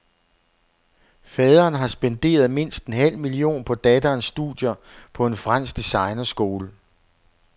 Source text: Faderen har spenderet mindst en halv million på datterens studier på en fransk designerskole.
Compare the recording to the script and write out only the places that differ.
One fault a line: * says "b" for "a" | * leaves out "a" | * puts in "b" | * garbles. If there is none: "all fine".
all fine